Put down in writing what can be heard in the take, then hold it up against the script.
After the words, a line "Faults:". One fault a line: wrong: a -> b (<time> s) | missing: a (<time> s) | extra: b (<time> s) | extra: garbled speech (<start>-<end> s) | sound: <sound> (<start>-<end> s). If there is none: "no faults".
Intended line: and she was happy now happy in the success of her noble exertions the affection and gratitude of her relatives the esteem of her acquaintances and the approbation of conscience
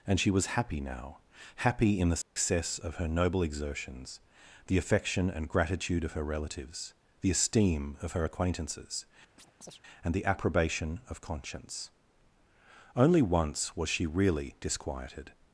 and she was happy now happy in the success of her noble exertions the affection and gratitude of her relatives the esteem of her acquaintances and the approbation of conscience only once was she really disquieted
Faults:
sound: dropout (2.2-2.4 s)
sound: chirp (9.4-9.8 s)
extra: only once was she really disquieted (13.0 s)